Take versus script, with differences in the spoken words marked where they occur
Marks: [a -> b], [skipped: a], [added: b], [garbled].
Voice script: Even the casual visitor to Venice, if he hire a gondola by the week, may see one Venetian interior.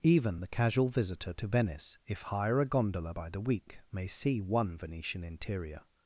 Even the casual visitor to Venice, if [skipped: he] hire a gondola by the week, may see one Venetian interior.